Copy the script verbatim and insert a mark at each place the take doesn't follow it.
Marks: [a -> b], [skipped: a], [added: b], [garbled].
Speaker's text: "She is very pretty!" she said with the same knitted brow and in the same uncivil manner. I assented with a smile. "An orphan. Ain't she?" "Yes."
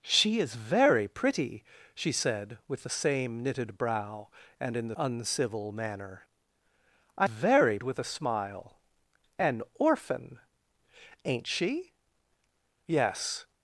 "She is very pretty!" she said with the same knitted brow and in the [skipped: same] uncivil manner. I [assented -> very] with a smile. "An orphan. Ain't she?" "Yes."